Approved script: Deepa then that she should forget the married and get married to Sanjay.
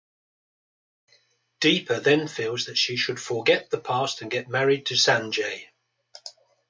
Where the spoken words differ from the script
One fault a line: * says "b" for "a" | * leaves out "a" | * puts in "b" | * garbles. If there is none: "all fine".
* puts in "feels"
* says "past" for "married"